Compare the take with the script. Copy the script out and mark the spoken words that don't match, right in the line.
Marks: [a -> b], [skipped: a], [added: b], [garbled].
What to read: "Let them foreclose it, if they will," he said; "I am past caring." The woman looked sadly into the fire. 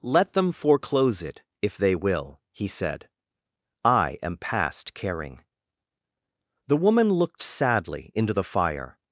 "Let them foreclose it, if they will," he said; "I am past caring." The woman looked sadly into the fire.